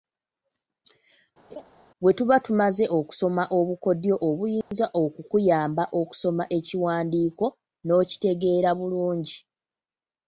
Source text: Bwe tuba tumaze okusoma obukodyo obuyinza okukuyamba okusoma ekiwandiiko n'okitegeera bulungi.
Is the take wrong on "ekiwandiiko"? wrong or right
right